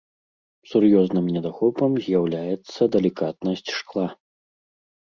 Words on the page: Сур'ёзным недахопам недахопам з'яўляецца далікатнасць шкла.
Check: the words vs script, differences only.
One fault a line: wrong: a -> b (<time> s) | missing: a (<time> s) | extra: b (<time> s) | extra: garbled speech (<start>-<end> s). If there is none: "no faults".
missing: недахопам (1.9 s)